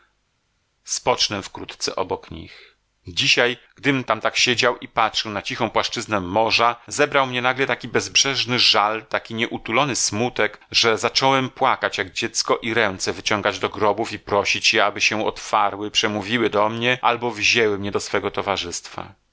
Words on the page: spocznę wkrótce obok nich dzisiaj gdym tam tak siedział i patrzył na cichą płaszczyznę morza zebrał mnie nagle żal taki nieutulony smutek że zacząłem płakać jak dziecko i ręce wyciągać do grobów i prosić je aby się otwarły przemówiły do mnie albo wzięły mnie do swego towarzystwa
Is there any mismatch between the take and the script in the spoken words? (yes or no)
yes